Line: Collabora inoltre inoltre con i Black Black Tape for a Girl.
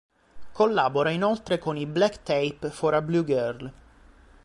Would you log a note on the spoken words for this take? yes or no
yes